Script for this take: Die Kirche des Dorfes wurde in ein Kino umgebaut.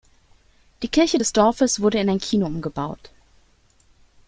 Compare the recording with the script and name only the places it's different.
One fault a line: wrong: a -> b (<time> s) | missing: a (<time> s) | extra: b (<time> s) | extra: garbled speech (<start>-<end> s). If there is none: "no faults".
no faults